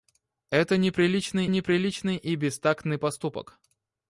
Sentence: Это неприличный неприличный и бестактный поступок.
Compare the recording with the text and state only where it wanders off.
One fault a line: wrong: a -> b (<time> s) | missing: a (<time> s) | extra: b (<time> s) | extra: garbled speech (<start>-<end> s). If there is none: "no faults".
no faults